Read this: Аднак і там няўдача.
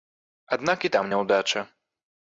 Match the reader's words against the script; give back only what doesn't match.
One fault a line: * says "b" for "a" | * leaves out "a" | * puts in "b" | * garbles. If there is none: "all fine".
all fine